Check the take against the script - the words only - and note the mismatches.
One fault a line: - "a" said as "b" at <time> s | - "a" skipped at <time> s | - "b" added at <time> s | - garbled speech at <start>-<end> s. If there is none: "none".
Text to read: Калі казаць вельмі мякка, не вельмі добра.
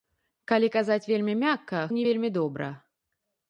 none